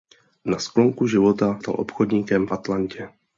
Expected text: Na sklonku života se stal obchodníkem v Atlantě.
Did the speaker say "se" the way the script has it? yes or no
no